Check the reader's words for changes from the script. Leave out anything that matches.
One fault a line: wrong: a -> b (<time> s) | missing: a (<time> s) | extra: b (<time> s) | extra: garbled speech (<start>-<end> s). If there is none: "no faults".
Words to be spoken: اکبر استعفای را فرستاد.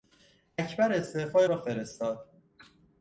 no faults